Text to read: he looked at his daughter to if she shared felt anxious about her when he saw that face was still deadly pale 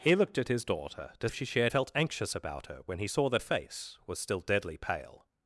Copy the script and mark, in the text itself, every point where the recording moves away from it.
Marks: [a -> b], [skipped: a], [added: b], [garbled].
he looked at his daughter to if she shared felt anxious about her when he saw that face was still deadly pale